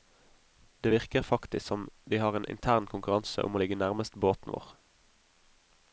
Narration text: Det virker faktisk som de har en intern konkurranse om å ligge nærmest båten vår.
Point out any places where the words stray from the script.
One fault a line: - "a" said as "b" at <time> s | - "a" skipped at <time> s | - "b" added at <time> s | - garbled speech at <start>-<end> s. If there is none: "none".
none